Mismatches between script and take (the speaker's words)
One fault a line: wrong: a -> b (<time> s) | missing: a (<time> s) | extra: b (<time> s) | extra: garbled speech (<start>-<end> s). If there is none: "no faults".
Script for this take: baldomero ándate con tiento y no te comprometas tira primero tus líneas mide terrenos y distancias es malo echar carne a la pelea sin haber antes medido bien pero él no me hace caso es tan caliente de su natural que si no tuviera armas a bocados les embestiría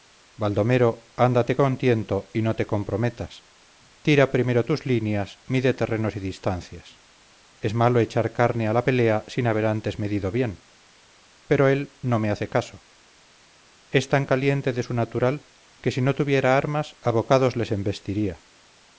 no faults